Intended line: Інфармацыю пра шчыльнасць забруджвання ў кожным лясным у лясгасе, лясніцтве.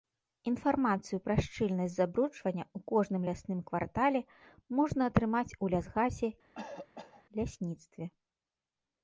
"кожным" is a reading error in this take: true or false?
false